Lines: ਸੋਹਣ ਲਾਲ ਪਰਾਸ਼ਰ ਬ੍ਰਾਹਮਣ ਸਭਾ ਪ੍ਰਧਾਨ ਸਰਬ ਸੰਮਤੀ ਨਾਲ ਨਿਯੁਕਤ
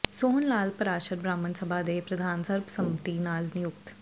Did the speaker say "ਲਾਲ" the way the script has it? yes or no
yes